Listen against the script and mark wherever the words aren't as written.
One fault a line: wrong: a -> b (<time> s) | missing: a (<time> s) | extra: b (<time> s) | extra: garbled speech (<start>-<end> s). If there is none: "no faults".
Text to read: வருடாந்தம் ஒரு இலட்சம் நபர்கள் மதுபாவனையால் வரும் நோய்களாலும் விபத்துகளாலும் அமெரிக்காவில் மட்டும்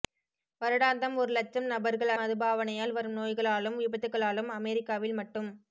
no faults